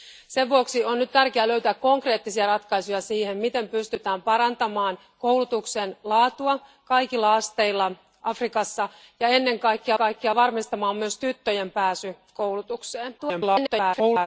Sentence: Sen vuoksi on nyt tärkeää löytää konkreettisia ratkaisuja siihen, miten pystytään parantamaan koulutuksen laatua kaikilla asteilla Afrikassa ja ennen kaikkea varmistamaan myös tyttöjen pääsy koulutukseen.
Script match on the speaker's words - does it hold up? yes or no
no